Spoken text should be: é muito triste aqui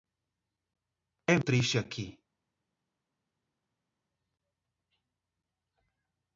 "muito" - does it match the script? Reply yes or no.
no